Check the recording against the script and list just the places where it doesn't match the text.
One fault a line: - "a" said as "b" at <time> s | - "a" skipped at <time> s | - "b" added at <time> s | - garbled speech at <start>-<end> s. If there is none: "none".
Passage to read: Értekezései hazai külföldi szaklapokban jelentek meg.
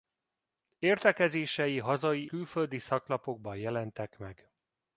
none